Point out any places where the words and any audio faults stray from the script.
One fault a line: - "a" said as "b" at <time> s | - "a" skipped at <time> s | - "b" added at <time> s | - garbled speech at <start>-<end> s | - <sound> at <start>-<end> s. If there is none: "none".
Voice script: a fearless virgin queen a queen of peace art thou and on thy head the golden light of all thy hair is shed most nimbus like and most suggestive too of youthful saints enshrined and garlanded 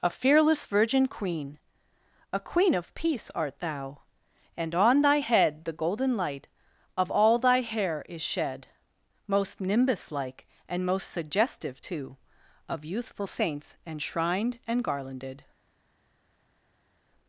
none